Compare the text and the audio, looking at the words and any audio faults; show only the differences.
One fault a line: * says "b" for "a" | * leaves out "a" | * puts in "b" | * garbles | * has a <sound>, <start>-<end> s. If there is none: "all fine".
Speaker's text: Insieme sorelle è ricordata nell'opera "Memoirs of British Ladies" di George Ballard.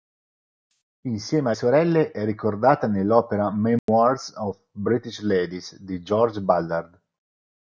* has a dropout, 3.8-3.9 s